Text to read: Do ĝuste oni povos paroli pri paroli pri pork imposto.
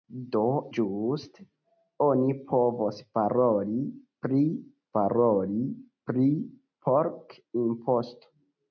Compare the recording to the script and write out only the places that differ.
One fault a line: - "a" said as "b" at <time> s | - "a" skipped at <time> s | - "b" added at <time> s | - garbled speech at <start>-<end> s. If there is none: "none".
none